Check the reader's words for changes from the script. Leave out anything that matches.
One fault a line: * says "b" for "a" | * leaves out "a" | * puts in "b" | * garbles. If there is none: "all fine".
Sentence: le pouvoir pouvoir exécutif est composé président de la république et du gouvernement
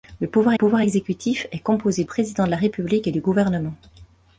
all fine